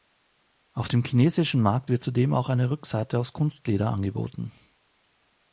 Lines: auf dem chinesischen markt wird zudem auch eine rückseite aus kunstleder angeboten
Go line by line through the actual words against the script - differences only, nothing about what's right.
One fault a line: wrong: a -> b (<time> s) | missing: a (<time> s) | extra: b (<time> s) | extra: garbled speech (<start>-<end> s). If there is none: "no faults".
no faults